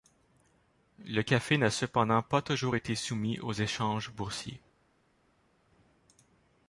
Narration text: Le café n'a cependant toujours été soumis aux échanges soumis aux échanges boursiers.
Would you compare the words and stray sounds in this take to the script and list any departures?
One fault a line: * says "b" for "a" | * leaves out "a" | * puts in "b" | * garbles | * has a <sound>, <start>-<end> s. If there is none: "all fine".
* puts in "pas"
* leaves out "soumis aux échanges"